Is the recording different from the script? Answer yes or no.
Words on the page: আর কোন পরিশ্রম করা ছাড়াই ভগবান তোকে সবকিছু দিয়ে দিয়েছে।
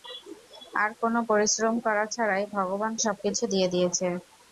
yes